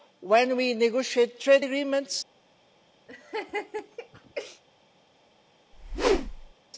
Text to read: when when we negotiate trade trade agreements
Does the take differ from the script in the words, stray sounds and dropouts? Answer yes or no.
yes